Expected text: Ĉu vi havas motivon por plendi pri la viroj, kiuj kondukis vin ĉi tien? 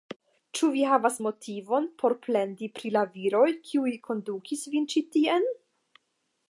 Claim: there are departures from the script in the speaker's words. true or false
false